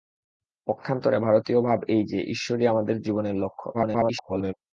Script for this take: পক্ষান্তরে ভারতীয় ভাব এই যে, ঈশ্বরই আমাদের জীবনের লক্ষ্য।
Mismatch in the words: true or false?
true